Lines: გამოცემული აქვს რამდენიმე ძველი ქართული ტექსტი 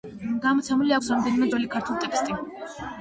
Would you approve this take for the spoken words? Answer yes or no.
yes